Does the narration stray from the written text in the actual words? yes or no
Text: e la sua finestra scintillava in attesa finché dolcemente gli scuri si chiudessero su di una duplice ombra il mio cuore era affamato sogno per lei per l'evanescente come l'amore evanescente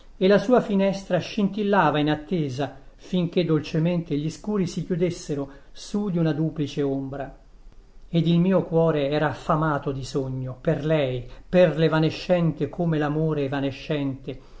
yes